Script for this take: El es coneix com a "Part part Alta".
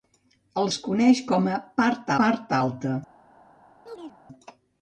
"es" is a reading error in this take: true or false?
false